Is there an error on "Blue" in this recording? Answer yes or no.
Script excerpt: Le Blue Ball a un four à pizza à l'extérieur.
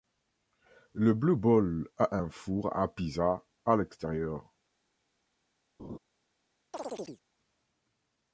no